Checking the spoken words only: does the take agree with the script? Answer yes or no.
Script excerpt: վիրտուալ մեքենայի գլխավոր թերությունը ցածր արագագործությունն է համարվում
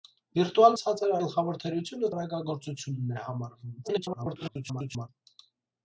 no